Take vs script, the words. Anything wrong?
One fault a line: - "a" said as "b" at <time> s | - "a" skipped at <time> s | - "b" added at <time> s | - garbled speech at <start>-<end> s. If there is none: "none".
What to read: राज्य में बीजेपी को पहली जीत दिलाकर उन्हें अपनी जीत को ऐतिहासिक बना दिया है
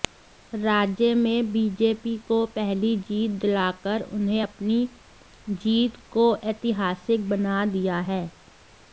none